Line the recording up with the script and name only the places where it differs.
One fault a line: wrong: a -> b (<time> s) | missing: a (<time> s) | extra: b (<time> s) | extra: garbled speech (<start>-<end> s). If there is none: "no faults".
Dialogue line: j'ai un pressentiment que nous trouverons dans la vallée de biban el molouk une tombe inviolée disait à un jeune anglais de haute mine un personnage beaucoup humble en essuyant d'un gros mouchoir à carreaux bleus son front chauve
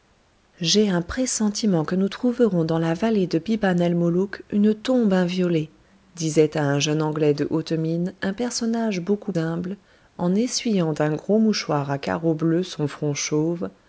no faults